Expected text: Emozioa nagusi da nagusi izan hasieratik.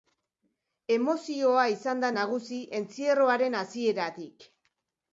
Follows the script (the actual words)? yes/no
no